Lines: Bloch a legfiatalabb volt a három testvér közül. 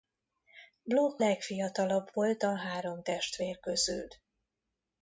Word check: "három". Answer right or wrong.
right